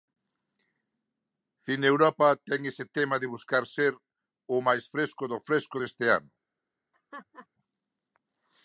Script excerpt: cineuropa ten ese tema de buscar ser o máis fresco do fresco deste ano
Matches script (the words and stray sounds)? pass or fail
fail